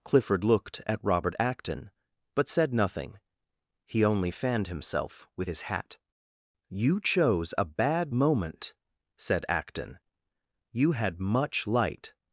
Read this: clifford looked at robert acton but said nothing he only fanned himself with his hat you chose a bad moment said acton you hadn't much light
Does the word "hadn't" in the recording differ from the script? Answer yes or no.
yes